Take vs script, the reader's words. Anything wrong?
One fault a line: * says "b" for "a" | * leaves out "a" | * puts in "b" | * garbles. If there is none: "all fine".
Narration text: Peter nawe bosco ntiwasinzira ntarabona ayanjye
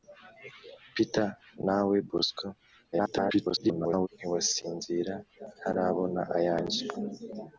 * garbles